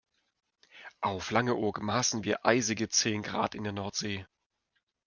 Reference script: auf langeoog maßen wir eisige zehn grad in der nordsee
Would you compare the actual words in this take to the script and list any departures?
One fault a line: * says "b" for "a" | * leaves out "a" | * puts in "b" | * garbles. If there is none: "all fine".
all fine